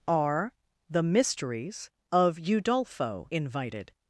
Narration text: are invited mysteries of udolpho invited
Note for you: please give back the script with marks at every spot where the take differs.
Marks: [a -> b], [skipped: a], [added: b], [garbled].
are [invited -> the] mysteries of udolpho invited